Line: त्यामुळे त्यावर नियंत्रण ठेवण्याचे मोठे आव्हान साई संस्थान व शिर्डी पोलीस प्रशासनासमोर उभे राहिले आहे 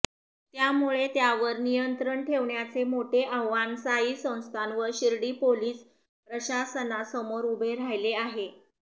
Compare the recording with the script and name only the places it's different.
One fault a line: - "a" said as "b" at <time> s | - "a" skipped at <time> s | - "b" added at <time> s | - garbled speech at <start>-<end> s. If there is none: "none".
none